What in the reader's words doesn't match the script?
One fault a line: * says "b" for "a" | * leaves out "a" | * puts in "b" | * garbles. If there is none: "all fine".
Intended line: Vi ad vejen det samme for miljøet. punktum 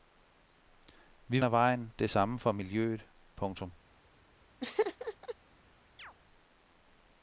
all fine